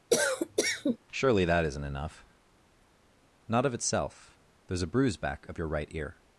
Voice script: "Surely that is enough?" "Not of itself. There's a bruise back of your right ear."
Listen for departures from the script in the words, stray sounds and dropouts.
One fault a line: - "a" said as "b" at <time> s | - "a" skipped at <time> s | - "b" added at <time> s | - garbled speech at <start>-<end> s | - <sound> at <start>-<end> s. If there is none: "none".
- cough at 0.1-1.0 s
- "is" said as "isn't" at 1.7 s